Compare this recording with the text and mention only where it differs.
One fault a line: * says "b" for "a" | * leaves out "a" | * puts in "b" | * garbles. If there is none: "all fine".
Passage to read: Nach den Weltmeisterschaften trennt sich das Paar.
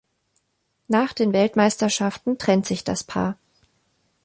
all fine